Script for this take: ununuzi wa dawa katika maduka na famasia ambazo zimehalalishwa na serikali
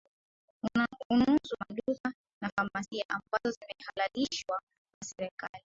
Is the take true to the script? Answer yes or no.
no